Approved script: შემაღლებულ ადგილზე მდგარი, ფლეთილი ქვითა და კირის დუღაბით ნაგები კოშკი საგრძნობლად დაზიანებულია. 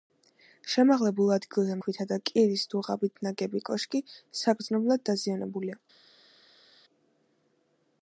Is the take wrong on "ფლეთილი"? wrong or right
wrong